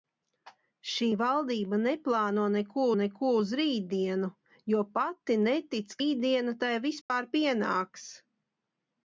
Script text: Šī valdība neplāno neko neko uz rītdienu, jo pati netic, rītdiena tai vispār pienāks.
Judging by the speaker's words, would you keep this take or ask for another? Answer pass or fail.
pass